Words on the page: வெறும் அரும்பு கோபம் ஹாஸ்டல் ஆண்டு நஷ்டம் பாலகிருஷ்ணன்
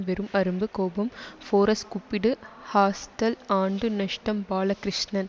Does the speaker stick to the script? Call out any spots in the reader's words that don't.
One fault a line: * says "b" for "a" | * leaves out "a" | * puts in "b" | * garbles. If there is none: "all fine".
* puts in "ஃபோரஸ் கூப்பிடு"